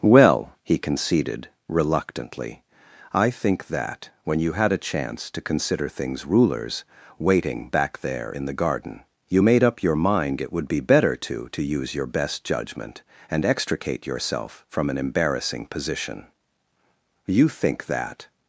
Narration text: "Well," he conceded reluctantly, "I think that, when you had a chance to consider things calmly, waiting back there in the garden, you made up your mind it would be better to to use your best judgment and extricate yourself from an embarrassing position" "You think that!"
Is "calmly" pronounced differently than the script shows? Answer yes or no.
yes